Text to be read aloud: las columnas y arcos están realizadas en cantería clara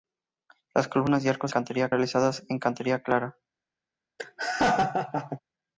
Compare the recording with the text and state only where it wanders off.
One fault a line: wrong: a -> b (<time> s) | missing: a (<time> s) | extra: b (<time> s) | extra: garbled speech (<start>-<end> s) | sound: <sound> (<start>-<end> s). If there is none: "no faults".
wrong: están -> cantería (1.5 s)
sound: laugh (4.2-5.4 s)